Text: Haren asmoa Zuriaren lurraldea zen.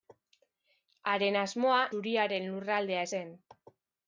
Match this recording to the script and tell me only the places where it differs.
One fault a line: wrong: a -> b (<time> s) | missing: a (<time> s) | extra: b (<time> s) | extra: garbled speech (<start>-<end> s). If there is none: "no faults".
no faults